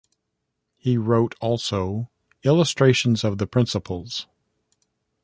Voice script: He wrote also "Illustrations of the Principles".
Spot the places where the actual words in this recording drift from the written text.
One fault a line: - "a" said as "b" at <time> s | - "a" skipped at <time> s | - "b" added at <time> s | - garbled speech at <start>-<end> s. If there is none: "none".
none